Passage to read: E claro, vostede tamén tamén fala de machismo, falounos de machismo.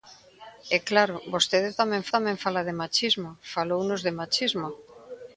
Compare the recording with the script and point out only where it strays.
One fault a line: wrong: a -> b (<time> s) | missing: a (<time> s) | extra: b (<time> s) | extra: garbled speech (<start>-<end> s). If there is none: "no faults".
no faults